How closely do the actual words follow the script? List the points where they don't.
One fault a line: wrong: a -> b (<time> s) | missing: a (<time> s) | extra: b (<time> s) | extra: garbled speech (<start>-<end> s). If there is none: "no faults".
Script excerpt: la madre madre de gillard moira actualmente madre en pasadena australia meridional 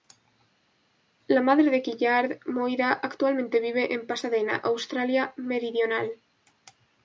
missing: madre (1.7 s)
wrong: madre -> vive (3.6 s)